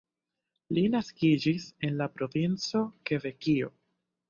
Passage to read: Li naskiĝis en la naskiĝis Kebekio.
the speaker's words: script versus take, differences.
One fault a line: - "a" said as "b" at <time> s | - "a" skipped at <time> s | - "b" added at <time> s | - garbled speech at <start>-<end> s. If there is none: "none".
- "naskiĝis" said as "provinco" at 2.2 s